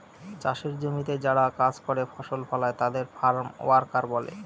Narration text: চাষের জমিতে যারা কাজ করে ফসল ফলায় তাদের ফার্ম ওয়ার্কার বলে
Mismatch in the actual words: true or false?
false